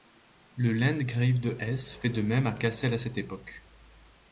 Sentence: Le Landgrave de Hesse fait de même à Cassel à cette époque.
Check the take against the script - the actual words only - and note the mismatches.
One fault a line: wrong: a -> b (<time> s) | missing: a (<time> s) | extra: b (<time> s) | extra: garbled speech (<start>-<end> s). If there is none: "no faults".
no faults